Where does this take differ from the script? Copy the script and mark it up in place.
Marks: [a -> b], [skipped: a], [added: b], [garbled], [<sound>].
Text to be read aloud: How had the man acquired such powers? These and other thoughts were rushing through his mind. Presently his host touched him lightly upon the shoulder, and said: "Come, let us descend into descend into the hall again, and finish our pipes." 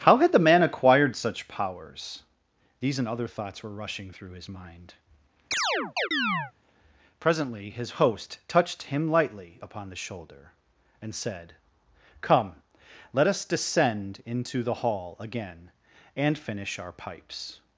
How had the man acquired such powers? These and other thoughts were rushing through his mind. [chirp] Presently his host touched him lightly upon the shoulder, and said: "Come, let us descend into [skipped: descend into] the hall again, and finish our pipes."